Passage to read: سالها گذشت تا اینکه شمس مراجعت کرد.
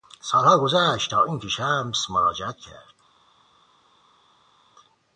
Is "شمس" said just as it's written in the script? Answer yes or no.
yes